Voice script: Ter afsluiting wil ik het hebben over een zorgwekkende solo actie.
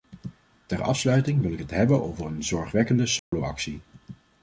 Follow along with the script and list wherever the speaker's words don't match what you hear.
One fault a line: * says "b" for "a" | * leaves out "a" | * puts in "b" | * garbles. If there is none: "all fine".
all fine